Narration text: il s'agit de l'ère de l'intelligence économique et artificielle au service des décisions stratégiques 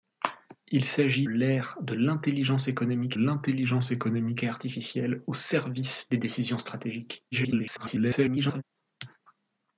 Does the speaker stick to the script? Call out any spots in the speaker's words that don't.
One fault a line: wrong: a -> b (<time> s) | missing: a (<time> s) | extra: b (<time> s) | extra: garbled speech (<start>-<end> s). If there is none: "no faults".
extra: l'ère (1.2 s)
wrong: l'ère de -> l'intelligence économique (1.9 s)
extra: garbled speech (7.3-8.6 s)